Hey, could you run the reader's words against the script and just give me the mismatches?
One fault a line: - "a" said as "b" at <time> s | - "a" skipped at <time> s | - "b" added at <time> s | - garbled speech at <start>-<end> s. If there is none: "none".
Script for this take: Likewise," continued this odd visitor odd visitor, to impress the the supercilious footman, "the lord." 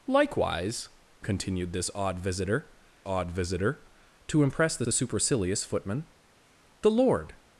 none